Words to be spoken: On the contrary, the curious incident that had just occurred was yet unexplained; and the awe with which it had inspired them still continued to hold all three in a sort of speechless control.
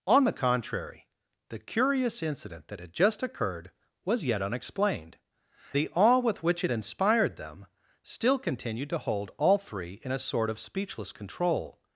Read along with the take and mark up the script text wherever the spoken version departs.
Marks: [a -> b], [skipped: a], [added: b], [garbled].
On the contrary, the curious incident that had just occurred was yet unexplained; [skipped: and] the awe with which it [skipped: had] inspired them still continued to hold all three in a sort of speechless control.